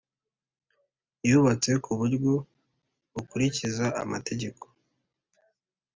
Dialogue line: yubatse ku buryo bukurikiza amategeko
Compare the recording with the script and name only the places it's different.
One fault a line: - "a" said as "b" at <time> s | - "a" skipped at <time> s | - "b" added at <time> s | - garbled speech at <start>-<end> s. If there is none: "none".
none